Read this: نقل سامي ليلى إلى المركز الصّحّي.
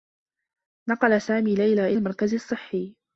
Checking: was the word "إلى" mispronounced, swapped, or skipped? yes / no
yes